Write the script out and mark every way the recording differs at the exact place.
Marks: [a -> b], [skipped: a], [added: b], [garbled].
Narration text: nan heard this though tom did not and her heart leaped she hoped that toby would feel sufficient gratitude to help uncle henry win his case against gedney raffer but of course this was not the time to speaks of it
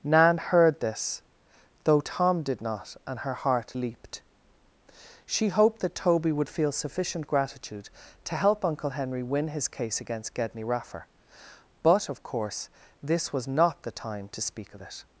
nan heard this though tom did not and her heart leaped she hoped that toby would feel sufficient gratitude to help uncle henry win his case against gedney raffer but of course this was not the time to [speaks -> speak] of it